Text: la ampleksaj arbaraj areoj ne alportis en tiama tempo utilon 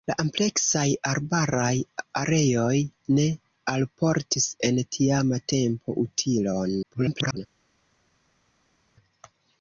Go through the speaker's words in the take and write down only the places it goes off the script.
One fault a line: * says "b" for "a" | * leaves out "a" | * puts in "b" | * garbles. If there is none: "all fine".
* garbles